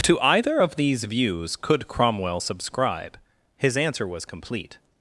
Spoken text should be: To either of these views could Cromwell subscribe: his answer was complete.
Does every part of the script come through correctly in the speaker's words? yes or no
yes